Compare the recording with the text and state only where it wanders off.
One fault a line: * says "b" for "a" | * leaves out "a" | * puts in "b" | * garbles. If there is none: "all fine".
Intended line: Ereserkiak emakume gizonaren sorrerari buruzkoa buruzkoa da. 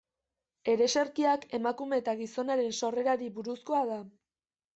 * puts in "eta"
* leaves out "buruzkoa"